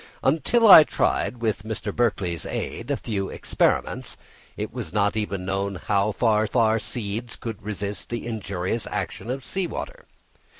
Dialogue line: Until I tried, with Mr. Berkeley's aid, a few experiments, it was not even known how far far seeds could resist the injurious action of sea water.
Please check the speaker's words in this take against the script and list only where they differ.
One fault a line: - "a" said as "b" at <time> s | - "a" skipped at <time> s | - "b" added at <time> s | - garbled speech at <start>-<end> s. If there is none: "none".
none